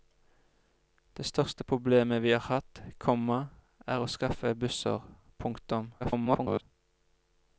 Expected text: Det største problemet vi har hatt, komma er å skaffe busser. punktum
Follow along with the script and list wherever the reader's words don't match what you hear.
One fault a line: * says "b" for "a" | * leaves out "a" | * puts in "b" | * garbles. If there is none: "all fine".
* garbles